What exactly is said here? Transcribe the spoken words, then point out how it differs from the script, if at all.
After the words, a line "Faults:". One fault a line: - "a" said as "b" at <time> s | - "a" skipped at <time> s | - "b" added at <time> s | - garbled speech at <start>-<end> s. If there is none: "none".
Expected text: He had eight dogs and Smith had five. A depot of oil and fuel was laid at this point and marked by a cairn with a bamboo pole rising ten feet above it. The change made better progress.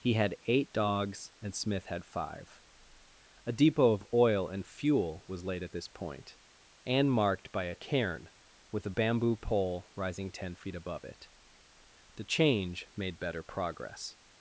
He had eight dogs and Smith had five. A depot of oil and fuel was laid at this point and marked by a cairn with a bamboo pole rising ten feet above it. The change made better progress.
Faults:
none